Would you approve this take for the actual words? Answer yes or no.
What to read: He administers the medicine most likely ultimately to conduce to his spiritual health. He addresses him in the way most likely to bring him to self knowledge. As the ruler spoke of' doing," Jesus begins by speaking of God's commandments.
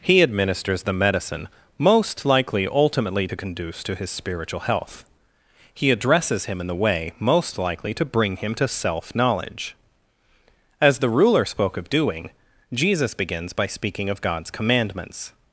yes